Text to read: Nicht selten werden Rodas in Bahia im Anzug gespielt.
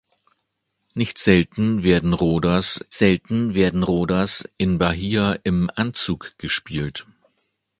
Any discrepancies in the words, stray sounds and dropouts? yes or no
yes